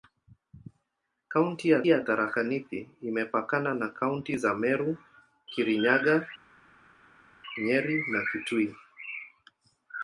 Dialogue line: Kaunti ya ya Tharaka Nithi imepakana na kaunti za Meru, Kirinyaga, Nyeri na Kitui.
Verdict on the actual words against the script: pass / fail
pass